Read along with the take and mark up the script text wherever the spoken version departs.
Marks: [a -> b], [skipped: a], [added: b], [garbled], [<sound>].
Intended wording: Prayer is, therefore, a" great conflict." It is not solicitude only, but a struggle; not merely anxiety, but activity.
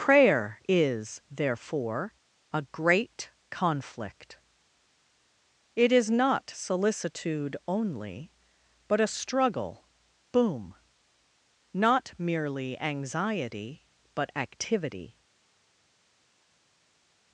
Prayer is, therefore, a" great conflict." It is not solicitude only, but a struggle; [added: boom] not merely anxiety, but activity.